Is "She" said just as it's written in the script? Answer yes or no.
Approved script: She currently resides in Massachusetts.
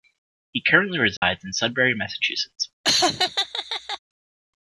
no